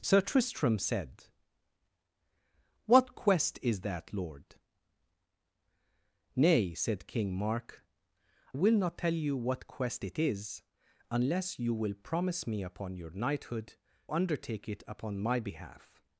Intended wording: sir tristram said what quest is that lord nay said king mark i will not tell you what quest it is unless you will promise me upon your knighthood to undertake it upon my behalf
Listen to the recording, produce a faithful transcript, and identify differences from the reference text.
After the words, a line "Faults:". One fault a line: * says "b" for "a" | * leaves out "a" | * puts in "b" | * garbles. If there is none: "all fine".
sir tristram said what quest is that lord nay said king mark will not tell you what quest it is unless you will promise me upon your knighthood undertake it upon my behalf
Faults:
* leaves out "i"
* leaves out "to"